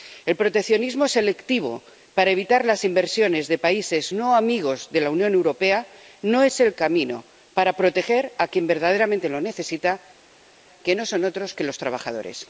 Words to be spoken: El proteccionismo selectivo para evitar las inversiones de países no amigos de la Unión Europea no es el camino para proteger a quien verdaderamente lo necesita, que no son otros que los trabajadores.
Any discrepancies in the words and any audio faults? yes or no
no